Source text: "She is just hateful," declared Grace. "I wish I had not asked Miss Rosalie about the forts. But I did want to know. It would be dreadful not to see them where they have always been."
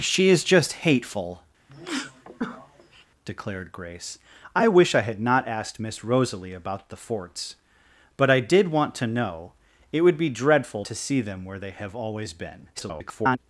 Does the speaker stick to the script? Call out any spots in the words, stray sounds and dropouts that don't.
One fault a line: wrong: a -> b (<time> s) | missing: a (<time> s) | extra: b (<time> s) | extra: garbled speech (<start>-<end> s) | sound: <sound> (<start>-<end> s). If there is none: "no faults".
sound: sneeze (1.7-3.1 s)
missing: not (10.8 s)
extra: garbled speech (12.7-13.4 s)